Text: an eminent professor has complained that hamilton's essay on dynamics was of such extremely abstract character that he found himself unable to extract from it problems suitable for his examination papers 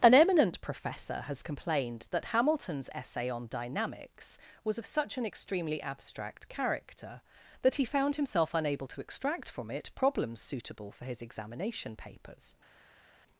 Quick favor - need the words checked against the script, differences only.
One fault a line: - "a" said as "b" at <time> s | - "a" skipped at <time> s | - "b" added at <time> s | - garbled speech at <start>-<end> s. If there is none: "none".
- "an" added at 5.2 s